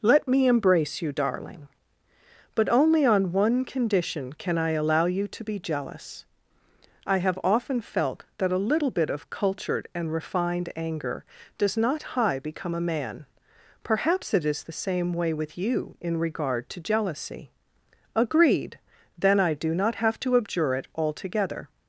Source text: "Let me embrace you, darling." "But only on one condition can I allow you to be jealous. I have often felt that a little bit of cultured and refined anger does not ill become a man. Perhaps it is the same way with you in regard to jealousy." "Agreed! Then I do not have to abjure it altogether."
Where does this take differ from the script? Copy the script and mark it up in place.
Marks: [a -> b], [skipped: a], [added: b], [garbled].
"Let me embrace you, darling." "But only on one condition can I allow you to be jealous. I have often felt that a little bit of cultured and refined anger does not [ill -> high] become a man. Perhaps it is the same way with you in regard to jealousy." "Agreed! Then I do not have to abjure it altogether."